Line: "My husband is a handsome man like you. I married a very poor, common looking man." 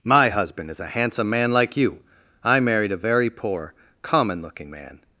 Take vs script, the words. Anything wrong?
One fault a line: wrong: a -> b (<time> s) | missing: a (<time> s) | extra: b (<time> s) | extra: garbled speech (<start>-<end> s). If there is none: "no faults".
no faults